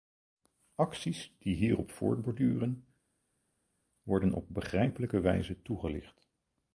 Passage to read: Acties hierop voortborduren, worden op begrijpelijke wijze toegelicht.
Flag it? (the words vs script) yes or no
yes